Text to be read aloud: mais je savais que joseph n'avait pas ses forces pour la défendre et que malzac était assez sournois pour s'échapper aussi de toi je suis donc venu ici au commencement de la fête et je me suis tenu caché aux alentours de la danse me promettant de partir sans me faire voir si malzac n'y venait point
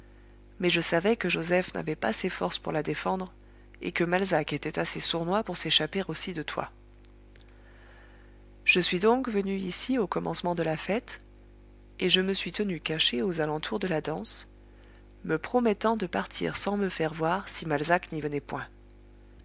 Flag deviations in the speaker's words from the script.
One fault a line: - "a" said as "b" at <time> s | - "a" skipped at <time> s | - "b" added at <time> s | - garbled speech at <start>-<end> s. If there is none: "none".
none